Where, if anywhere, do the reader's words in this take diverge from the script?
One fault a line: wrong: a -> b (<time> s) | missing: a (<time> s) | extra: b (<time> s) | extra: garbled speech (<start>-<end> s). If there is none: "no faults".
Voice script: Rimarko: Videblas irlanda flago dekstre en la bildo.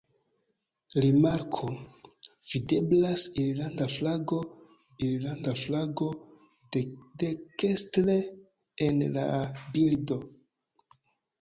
extra: irlanda flago (5.1 s)